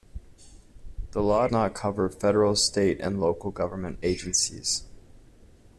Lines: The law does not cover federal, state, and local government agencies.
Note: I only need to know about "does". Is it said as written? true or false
false